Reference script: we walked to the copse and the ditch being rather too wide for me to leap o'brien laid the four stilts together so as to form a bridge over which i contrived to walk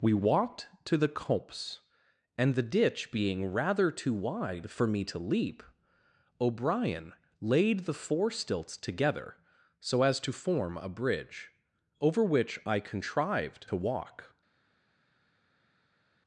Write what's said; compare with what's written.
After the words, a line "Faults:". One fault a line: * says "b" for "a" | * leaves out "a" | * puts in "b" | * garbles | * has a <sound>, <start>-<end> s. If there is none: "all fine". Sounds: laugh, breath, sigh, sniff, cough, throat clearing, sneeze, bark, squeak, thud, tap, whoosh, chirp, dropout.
we walked to the copse and the ditch being rather too wide for me to leap o'brien laid the four stilts together so as to form a bridge over which i contrived to walk
Faults:
all fine